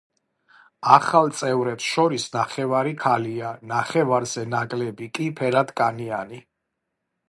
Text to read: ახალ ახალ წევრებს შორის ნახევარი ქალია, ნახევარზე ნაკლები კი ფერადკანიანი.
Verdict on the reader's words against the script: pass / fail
fail